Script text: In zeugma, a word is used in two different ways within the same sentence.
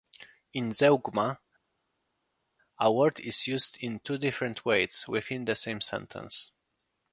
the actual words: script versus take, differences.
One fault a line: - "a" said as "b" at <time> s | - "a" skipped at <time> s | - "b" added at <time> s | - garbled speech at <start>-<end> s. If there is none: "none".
none